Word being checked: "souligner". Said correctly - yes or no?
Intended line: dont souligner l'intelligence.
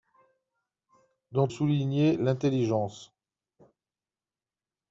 yes